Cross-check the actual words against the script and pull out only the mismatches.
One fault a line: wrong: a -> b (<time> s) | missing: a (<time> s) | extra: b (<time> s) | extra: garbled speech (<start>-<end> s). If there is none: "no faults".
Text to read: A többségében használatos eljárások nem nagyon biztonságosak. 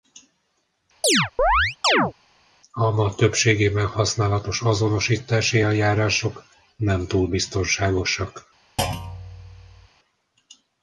extra: ma (2.9 s)
extra: azonosítási (4.6 s)
wrong: nagyon -> túl (7.1 s)